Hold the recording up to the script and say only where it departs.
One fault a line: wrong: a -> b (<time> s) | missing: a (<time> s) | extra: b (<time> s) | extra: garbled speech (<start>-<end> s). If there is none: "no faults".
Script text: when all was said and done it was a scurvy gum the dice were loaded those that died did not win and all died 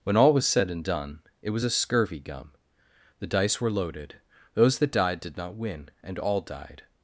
no faults